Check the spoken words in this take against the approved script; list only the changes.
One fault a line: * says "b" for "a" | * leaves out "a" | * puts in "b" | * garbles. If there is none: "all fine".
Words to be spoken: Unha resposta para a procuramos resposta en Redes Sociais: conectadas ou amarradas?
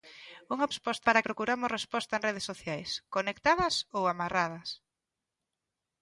all fine